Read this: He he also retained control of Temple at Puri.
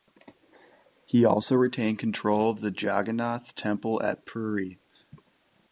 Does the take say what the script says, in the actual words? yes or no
no